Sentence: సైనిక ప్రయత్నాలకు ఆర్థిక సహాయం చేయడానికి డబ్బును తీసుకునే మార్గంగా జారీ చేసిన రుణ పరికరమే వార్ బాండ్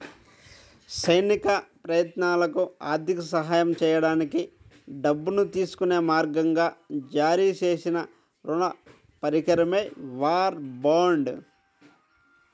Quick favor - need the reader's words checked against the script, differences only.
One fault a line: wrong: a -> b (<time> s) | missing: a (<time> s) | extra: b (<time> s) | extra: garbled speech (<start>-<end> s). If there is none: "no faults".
no faults